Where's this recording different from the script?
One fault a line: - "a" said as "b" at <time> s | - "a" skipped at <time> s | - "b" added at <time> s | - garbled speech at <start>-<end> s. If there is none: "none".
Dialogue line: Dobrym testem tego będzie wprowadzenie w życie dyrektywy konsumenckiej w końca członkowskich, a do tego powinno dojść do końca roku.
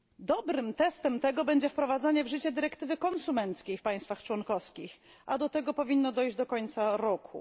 - "końca" said as "państwach" at 3.8 s